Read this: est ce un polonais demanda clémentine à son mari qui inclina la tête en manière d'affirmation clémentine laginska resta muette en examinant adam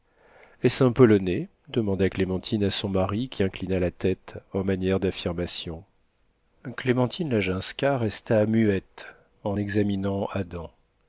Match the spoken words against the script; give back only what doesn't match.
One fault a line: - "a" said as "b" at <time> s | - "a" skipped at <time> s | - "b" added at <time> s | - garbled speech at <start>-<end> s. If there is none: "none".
none